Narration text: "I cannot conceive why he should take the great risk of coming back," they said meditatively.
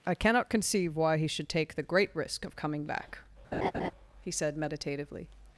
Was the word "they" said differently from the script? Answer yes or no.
yes